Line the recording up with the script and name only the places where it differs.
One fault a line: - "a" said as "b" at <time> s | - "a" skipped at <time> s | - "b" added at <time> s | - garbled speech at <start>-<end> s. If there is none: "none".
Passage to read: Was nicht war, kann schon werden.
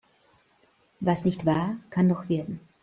- "schon" said as "noch" at 2.1 s